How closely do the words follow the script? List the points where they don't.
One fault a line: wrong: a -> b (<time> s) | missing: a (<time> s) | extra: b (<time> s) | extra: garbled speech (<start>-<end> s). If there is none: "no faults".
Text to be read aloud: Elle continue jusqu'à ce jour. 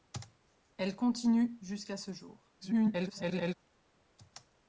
extra: garbled speech (2.6-3.5 s)